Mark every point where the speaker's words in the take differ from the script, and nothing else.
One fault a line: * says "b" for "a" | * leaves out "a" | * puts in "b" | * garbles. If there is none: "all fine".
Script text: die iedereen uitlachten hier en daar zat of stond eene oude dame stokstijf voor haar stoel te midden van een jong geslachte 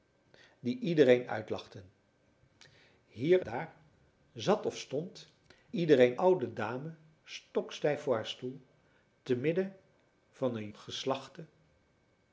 * leaves out "en"
* says "iedereen" for "eene"
* leaves out "jong"